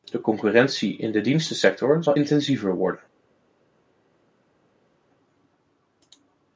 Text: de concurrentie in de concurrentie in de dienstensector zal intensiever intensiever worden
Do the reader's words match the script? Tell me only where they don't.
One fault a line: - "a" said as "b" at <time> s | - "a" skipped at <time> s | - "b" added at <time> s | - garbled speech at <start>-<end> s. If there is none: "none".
- "concurrentie in de" skipped at 1.2 s
- "intensiever" skipped at 2.7 s